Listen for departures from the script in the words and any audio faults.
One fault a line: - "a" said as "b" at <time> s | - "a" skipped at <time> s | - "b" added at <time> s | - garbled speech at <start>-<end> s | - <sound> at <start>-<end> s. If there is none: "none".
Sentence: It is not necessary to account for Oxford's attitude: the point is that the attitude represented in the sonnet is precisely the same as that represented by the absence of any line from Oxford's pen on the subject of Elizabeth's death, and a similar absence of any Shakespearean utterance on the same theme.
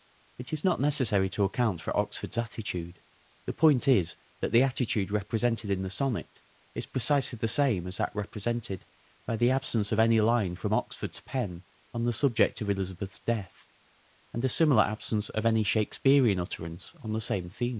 none